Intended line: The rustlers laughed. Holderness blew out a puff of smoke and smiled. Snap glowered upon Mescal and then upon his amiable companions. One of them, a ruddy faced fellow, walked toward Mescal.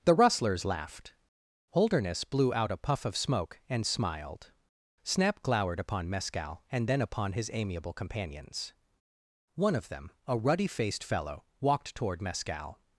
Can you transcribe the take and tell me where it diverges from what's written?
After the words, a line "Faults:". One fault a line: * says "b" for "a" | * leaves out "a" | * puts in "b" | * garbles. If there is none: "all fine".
The rustlers laughed. Holderness blew out a puff of smoke and smiled. Snap glowered upon Mescal and then upon his amiable companions. One of them, a ruddy faced fellow, walked toward Mescal.
Faults:
all fine